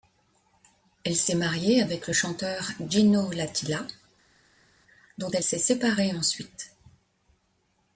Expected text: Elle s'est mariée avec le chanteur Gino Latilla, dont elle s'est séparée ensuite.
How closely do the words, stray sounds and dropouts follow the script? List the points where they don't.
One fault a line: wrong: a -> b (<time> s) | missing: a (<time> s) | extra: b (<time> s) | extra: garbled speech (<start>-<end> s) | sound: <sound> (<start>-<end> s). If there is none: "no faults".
no faults